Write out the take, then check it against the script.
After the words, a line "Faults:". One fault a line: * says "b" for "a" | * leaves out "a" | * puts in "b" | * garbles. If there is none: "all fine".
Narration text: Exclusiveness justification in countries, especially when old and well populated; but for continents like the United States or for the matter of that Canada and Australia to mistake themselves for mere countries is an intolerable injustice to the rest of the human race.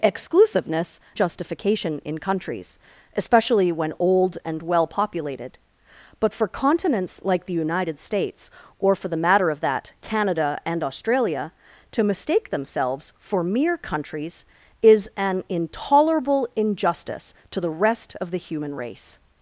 Exclusiveness justification in countries, especially when old and well populated; but for continents like the United States or for the matter of that Canada and Australia to mistake themselves for mere countries is an intolerable injustice to the rest of the human race.
Faults:
all fine